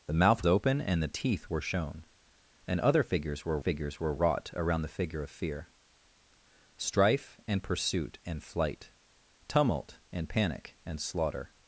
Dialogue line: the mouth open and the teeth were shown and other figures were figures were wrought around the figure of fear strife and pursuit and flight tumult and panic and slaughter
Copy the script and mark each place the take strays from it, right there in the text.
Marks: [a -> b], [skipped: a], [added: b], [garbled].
the mouth open and the teeth were shown and other figures were figures were wrought around the figure of fear strife and pursuit and flight tumult and panic and slaughter